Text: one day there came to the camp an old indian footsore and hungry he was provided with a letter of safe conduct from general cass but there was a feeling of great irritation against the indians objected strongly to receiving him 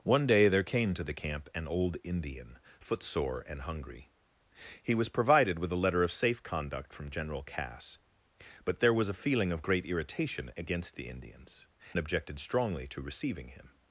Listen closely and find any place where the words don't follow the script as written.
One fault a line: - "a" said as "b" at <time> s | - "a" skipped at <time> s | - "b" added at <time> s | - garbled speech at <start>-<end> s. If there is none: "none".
none